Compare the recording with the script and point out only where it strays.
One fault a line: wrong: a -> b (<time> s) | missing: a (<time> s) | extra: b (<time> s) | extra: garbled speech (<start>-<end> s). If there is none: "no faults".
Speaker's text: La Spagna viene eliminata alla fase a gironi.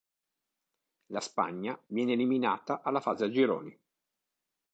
no faults